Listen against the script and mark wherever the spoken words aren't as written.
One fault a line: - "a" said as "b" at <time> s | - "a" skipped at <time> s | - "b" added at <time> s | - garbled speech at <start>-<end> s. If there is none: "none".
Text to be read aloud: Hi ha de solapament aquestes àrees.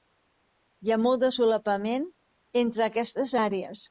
- "molt" added at 1.0 s
- "entre" added at 2.6 s